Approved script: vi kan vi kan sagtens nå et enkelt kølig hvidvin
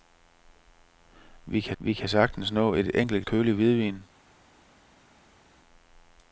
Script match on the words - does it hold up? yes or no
yes